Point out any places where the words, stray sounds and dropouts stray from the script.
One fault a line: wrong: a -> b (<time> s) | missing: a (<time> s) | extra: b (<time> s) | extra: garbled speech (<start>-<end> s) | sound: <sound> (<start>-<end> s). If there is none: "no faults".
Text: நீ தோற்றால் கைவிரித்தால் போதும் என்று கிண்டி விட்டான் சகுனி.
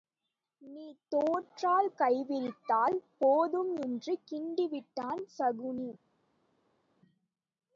no faults